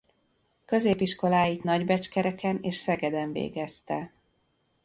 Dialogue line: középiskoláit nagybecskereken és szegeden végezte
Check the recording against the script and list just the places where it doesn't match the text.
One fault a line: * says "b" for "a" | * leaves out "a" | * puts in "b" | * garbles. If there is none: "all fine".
all fine